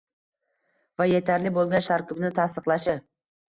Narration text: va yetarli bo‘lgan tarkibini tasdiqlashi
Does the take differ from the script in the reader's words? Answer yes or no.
no